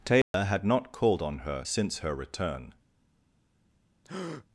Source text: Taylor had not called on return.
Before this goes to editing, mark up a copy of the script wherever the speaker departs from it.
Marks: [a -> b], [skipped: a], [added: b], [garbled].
Taylor had not called on [added: her since her] return.